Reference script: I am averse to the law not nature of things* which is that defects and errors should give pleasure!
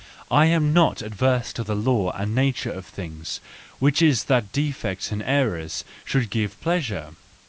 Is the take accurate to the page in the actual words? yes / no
no